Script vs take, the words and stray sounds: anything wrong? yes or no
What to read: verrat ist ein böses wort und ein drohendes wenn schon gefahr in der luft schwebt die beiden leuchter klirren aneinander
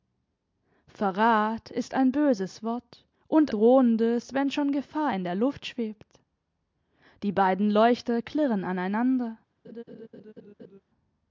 yes